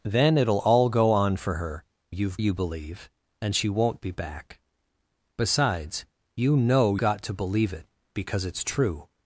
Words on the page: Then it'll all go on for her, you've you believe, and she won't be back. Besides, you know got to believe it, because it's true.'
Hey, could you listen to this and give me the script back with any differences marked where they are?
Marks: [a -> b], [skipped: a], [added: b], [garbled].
Then it'll all go on for her, you've you believe, and she won't be back. Besides, you know got to believe it, because it's true.'